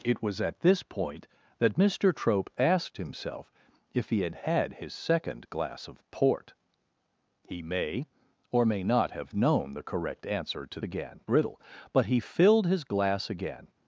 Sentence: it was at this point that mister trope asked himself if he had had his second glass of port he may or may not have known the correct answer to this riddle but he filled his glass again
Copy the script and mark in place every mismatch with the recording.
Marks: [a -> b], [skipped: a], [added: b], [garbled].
it was at this point that mister trope asked himself if he had had his second glass of port he may or may not have known the correct answer to [this -> again] riddle but he filled his glass again